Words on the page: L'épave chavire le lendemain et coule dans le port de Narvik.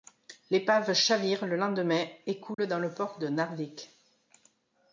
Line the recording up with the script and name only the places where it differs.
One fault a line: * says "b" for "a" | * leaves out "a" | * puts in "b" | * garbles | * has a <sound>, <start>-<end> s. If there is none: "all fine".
* has a dropout, 2.5-2.6 s